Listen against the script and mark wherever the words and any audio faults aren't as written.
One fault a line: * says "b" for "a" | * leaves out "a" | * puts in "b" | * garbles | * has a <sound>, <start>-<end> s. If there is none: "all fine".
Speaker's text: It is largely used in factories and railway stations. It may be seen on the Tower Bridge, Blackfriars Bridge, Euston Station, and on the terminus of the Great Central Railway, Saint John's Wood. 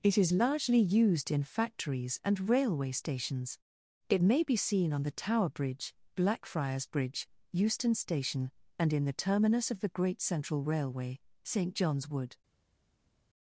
* says "in" for "on"